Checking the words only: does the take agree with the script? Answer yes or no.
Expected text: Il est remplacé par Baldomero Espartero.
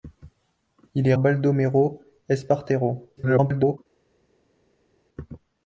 no